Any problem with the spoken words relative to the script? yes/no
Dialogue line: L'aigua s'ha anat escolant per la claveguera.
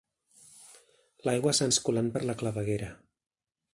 yes